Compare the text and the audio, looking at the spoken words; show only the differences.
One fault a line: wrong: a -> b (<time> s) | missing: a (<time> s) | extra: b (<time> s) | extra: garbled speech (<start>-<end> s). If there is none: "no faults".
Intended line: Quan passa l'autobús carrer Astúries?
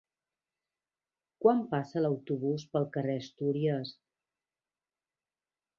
extra: pel (2.7 s)